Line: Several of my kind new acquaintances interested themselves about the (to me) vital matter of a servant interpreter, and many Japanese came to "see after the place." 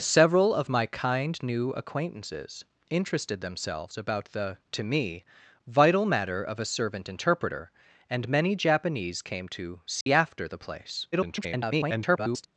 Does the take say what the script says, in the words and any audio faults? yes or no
no